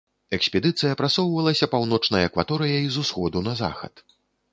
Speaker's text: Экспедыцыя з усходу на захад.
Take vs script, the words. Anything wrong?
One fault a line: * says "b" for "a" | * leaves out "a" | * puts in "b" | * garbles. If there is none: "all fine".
* puts in "прасоўвалася паўночнай акваторыяй"